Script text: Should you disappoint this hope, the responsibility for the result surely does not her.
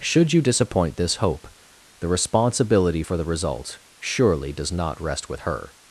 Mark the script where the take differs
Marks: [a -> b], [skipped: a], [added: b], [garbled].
Should you disappoint this hope, the responsibility for the result surely does not [added: rest with] her.